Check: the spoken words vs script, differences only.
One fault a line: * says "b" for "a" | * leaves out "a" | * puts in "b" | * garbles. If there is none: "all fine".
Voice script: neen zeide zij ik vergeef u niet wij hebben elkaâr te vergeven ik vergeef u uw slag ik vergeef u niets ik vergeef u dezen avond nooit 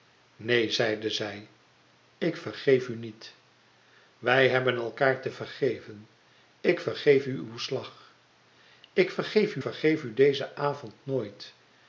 * leaves out "niets ik"